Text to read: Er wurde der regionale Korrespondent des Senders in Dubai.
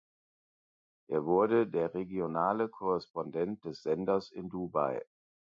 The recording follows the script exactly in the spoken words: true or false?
true